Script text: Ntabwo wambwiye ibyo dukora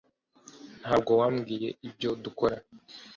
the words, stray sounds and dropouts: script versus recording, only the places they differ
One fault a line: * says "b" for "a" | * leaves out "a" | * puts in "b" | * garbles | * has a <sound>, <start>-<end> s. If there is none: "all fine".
all fine